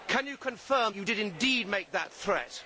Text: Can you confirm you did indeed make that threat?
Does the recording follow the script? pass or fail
pass